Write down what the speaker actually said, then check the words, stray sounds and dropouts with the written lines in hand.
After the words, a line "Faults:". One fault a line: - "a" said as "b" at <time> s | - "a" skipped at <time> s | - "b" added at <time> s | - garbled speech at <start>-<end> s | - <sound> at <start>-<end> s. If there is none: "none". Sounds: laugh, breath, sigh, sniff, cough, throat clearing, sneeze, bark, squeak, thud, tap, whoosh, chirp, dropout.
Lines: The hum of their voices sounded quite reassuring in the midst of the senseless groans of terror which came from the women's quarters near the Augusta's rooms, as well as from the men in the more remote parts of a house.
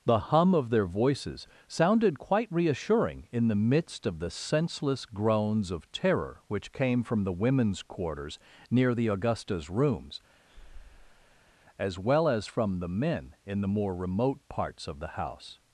The hum of their voices sounded quite reassuring in the midst of the senseless groans of terror which came from the women's quarters near the Augusta's rooms, as well as from the men in the more remote parts of the house.
Faults:
- breath at 10.5-11.6 s
- "a" said as "the" at 15.0 s